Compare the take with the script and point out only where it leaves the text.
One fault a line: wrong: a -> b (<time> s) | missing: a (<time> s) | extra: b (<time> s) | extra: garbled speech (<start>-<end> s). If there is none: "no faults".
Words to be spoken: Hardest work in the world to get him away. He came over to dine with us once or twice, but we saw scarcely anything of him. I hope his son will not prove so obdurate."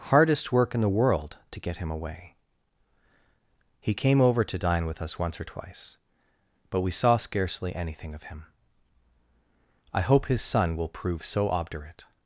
missing: not (10.9 s)